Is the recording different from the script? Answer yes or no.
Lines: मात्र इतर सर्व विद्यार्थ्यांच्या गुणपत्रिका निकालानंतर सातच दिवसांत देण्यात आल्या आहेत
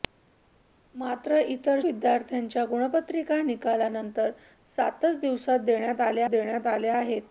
yes